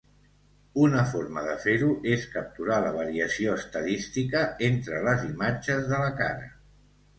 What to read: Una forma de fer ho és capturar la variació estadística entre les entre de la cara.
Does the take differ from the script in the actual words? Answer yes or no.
yes